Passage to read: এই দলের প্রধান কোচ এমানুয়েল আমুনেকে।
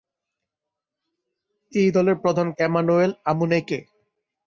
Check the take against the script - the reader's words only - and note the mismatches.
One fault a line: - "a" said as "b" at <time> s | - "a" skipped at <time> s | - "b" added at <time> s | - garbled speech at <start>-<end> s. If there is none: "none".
- "কোচ" skipped at 2.5 s